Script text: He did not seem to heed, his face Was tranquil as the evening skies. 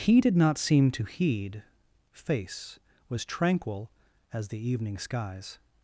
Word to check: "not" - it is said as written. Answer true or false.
true